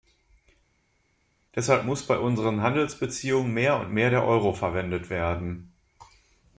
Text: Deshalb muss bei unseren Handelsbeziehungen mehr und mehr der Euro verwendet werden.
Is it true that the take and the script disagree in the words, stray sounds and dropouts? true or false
false